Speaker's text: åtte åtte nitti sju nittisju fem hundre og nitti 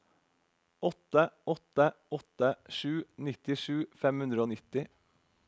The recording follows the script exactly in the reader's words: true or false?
false